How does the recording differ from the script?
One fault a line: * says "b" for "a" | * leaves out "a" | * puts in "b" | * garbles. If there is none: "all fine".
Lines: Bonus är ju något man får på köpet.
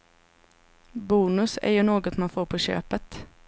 all fine